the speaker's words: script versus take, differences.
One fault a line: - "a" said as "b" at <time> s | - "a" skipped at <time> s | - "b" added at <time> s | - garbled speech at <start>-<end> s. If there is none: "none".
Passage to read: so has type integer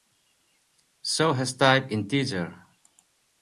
none